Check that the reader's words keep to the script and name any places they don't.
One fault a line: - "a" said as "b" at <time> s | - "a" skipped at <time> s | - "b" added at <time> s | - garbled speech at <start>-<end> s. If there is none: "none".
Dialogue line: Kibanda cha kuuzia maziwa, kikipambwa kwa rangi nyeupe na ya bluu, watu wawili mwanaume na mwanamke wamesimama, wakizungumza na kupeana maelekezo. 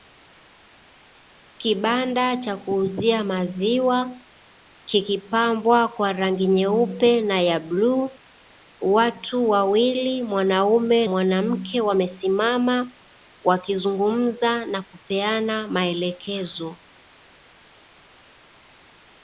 - "na" skipped at 11.1 s